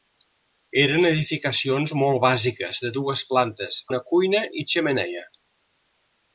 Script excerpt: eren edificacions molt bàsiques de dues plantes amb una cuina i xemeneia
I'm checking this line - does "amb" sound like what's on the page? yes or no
no